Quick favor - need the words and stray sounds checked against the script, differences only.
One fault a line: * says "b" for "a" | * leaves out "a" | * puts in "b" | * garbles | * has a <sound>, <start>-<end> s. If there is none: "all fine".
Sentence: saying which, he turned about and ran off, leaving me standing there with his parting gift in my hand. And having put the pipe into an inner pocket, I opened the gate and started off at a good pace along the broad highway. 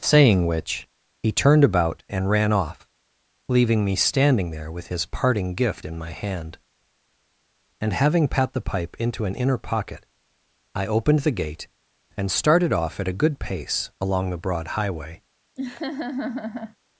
* says "pat" for "put"
* has a laugh, 15.6-16.8 s